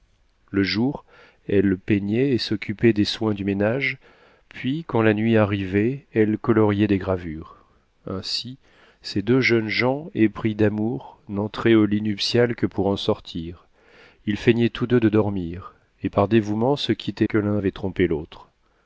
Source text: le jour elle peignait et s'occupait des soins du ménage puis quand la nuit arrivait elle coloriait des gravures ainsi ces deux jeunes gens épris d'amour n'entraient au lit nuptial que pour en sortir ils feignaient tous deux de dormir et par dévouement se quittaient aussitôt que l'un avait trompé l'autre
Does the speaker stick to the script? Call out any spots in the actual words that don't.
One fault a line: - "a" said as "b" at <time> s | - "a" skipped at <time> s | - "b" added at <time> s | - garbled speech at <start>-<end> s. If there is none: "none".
- "aussitôt" skipped at 17.3 s